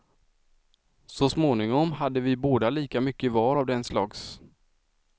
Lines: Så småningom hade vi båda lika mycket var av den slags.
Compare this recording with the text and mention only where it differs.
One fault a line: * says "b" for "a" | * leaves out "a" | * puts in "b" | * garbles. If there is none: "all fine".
all fine